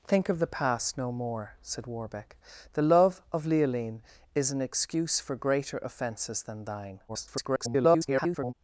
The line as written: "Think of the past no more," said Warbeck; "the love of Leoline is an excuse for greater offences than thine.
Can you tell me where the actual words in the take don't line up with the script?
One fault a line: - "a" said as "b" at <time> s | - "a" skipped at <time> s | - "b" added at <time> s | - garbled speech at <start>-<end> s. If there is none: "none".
- garbled speech at 7.1-8.5 s